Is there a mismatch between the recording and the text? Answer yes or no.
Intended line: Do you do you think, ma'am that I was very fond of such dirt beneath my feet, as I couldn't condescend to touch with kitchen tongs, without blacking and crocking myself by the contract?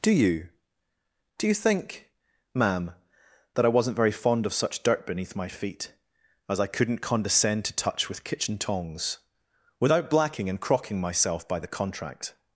yes